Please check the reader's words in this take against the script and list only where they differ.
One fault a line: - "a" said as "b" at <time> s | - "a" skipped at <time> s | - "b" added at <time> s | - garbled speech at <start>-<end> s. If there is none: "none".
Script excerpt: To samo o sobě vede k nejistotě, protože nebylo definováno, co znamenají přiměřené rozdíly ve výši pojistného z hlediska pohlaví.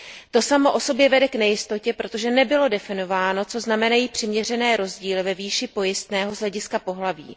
none